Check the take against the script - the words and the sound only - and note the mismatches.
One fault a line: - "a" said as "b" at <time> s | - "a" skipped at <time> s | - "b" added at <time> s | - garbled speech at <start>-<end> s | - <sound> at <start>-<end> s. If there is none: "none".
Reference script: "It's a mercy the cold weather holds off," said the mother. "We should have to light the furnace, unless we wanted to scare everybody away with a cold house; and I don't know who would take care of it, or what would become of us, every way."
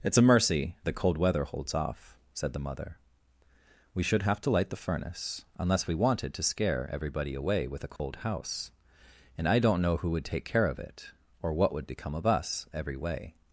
- dropout at 8.0-8.0 s